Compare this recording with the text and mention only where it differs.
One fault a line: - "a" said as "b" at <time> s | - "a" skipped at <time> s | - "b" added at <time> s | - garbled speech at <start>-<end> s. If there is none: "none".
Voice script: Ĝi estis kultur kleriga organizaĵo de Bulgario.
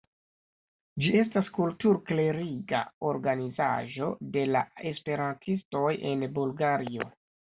- "estis" said as "estas" at 1.2 s
- "la esperantistoj en" added at 4.5 s